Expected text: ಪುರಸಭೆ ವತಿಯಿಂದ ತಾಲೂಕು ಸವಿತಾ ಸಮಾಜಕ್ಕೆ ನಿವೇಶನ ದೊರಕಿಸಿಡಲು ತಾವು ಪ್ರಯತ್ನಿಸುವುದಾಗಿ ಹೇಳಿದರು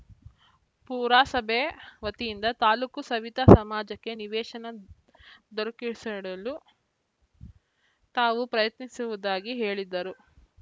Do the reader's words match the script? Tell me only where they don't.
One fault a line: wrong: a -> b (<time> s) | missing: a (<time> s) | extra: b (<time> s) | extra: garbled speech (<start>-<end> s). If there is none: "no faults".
no faults